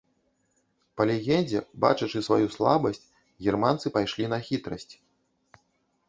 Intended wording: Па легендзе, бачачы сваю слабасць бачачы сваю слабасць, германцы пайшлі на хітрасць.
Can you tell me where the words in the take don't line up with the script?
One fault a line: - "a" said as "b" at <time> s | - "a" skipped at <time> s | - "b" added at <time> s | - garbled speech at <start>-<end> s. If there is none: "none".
- "бачачы сваю слабасць" skipped at 3.0 s